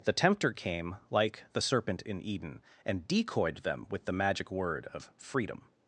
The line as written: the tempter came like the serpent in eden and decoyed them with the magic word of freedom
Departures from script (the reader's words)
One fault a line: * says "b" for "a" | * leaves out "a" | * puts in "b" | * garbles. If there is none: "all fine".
all fine